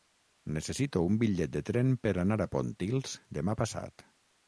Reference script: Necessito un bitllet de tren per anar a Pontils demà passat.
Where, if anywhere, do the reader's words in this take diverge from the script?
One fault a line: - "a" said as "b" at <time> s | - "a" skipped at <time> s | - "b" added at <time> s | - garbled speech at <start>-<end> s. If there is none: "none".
none